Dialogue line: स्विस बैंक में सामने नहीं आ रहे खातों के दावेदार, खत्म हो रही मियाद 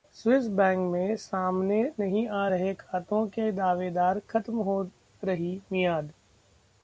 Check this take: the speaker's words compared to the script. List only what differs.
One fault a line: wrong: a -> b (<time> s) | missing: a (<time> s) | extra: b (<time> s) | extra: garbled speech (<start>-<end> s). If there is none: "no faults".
no faults